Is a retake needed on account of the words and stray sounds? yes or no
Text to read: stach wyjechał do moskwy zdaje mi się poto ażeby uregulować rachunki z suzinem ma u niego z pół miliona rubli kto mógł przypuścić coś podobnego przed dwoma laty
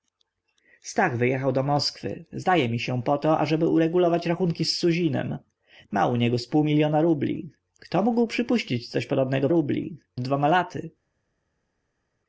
yes